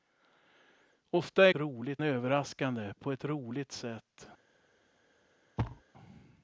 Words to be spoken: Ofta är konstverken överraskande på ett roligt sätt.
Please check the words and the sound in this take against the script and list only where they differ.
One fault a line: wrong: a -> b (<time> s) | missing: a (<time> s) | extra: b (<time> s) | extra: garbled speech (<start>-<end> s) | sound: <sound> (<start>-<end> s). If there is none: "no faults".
wrong: konstverken -> roligt (1.5 s)
sound: thud (5.6-5.8 s)